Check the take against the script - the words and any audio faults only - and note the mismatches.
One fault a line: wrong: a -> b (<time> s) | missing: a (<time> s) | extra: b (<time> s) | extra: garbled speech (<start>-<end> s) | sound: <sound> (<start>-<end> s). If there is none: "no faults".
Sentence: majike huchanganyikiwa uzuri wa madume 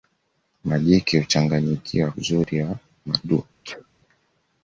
sound: sneeze (3.6-3.9 s)